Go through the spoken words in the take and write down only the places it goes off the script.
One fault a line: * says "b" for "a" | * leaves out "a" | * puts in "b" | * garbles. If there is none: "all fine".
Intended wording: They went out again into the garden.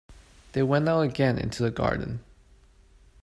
all fine